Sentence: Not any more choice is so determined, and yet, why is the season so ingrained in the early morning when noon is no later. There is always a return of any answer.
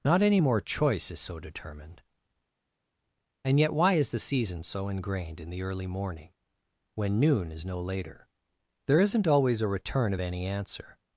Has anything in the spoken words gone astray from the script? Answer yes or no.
yes